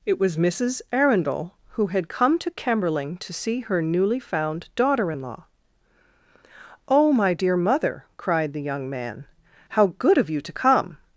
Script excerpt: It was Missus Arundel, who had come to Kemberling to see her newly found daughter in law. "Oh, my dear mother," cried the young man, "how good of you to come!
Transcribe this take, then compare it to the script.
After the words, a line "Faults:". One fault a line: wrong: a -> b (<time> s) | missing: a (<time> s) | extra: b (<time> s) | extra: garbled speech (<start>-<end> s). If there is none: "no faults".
It was Missus Arundel, who had come to Kemberling to see her newly found daughter in law. "Oh, my dear mother," cried the young man, "how good of you to come!
Faults:
no faults